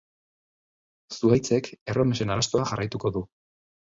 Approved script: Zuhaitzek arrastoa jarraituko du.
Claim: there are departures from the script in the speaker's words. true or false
true